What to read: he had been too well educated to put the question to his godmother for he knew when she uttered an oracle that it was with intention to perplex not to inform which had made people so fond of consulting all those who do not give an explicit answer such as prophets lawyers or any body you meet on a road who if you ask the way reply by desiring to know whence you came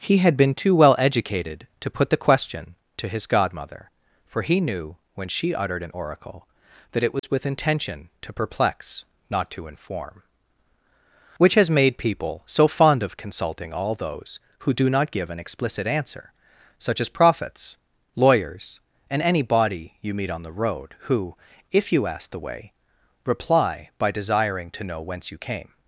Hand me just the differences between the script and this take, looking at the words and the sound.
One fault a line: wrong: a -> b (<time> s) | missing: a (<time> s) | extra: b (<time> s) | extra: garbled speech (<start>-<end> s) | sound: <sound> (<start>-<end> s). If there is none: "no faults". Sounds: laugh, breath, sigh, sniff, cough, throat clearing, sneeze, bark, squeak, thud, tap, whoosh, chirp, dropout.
sound: dropout (7.2-7.2 s)
wrong: had -> has (11.5 s)
wrong: or -> and (19.1 s)
wrong: a -> the (20.4 s)